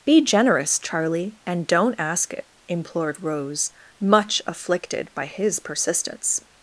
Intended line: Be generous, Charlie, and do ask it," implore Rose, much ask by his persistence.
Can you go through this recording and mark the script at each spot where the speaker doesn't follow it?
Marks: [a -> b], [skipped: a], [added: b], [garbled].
Be generous, Charlie, and [do -> don't] ask it," [implore -> implored] Rose, much [ask -> afflicted] by his persistence.